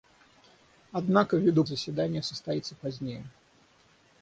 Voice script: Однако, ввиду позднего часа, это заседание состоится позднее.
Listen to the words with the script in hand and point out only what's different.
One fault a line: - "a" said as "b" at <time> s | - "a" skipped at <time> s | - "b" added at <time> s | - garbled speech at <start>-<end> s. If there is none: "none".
- "позднего часа это" skipped at 1.6 s